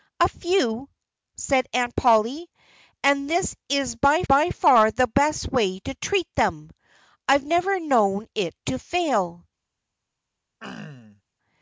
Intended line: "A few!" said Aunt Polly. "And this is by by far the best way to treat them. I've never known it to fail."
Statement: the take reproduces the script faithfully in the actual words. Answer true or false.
true